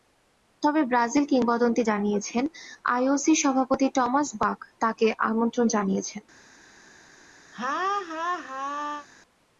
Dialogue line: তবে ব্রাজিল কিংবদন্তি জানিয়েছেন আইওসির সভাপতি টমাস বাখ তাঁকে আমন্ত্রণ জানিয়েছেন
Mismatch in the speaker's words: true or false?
false